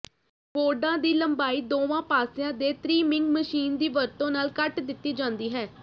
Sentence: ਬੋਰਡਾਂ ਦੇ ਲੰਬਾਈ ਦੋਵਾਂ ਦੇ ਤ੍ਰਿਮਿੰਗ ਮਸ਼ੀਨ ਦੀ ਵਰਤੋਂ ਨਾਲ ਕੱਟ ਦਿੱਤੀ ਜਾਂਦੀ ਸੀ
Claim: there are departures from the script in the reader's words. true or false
true